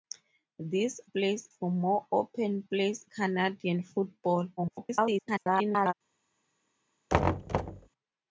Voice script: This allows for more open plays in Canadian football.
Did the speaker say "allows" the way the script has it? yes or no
no